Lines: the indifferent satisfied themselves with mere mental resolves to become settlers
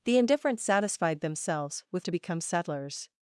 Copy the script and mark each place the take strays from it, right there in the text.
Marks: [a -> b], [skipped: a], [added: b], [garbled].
the indifferent satisfied themselves with [skipped: mere mental resolves] to become settlers